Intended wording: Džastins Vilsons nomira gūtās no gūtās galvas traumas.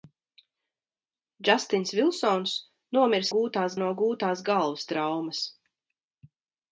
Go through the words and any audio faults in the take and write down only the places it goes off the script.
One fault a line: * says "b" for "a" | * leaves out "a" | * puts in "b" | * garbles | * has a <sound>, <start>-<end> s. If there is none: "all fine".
all fine